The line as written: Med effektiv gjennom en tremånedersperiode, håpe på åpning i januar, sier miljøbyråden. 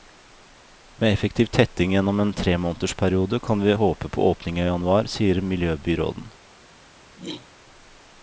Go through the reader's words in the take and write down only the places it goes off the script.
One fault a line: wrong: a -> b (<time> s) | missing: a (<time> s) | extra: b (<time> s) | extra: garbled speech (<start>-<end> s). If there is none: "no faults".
extra: tetting (1.4 s)
extra: kan vi (3.4 s)